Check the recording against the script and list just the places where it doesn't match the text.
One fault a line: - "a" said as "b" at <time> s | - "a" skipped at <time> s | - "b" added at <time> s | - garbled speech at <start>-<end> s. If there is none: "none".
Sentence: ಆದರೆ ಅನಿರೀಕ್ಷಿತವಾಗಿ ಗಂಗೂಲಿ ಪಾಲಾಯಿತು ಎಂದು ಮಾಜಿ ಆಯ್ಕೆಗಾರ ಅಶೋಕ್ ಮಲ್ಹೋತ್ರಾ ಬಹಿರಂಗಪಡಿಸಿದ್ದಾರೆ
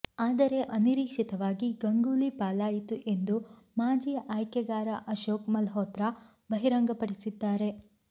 none